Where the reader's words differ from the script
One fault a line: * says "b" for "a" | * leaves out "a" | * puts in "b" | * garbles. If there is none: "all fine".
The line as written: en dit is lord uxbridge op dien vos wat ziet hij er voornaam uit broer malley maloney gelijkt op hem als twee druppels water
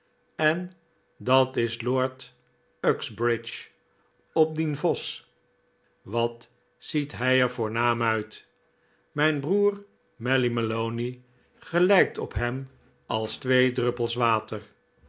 * says "dat" for "dit"
* puts in "mijn"